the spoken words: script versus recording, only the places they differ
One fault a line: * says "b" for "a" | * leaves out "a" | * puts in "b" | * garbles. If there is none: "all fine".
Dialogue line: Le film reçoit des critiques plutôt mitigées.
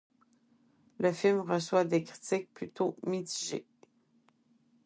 all fine